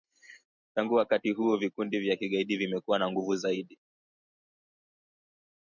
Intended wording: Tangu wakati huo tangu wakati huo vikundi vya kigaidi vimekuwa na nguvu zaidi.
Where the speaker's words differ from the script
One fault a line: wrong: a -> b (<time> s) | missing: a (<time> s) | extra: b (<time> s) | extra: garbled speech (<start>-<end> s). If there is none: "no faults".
missing: tangu wakati huo (1.6 s)